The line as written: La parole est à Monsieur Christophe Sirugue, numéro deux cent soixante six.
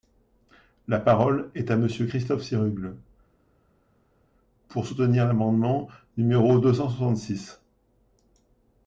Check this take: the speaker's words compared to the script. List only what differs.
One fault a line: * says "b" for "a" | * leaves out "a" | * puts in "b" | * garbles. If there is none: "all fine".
* puts in "pour soutenir l'amendement"